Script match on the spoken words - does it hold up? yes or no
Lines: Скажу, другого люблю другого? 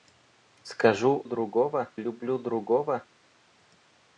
yes